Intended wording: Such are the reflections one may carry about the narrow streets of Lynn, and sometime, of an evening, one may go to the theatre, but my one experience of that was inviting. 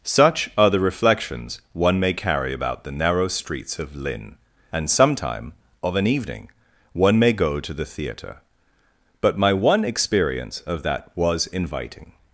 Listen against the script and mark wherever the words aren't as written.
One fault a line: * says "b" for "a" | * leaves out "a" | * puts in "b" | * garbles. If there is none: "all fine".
all fine